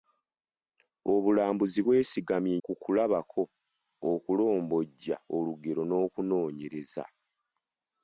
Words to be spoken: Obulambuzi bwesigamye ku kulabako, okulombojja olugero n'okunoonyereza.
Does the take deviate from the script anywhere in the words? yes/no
no